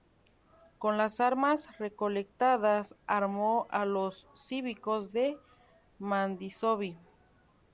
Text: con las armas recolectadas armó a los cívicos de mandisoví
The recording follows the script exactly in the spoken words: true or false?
true